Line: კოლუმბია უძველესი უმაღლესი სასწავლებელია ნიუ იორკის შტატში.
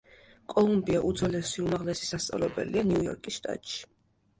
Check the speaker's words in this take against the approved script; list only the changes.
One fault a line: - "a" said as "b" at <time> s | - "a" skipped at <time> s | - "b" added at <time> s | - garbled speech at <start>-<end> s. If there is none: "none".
none